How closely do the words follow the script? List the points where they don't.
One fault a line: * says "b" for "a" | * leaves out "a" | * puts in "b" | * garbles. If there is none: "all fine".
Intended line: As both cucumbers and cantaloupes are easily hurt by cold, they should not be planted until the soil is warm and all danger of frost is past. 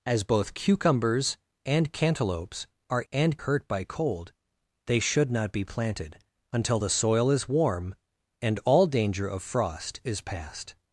* says "and" for "easily"